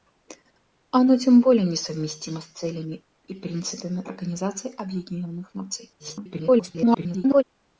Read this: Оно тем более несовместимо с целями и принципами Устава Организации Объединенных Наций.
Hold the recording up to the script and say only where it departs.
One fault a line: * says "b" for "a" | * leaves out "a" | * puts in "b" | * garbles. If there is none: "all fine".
* leaves out "Устава"
* garbles